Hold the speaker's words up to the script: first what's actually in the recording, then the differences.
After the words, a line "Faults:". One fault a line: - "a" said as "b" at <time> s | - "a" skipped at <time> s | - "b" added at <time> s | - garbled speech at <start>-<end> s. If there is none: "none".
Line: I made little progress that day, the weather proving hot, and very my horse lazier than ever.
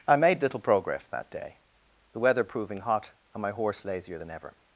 I made little progress that day, the weather proving hot, and my horse lazier than ever.
Faults:
- "very" skipped at 3.4 s